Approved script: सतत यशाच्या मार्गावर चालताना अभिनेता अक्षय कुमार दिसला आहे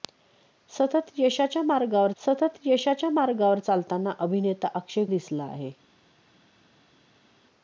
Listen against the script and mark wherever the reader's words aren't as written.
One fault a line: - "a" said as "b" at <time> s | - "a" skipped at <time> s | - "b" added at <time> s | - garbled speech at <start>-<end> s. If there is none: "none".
- "सतत यशाच्या मार्गावर" added at 2.2 s
- "कुमार" skipped at 5.1 s